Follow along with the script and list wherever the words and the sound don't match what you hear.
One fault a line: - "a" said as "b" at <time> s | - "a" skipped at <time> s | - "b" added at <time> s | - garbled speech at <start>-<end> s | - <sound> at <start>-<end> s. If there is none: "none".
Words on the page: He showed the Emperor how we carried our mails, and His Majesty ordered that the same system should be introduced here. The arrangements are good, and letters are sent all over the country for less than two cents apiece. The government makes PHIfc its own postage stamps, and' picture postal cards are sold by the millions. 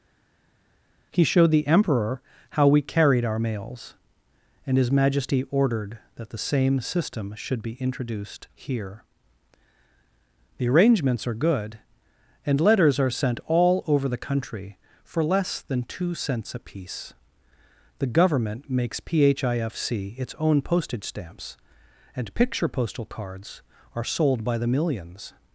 none